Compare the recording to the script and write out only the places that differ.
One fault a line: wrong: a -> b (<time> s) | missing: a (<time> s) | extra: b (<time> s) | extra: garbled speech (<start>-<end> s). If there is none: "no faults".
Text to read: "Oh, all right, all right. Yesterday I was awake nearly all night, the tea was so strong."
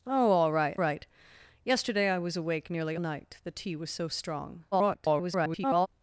missing: all (0.8 s)
missing: all (2.9 s)
extra: garbled speech (4.7-5.9 s)